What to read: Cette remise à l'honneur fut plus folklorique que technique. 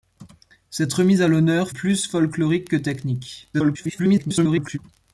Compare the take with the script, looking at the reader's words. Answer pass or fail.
fail